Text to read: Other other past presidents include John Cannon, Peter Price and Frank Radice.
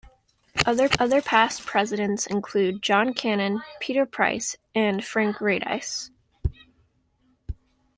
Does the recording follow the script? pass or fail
pass